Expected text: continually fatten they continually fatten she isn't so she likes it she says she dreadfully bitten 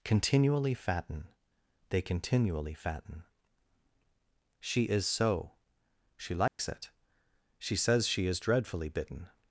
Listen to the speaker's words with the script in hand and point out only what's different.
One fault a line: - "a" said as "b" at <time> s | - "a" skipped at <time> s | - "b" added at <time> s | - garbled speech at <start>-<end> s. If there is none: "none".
- "isn't" said as "is" at 4.8 s
- "is" added at 8.3 s